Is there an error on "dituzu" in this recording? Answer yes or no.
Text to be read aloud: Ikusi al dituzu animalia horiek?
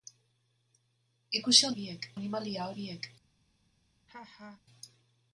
yes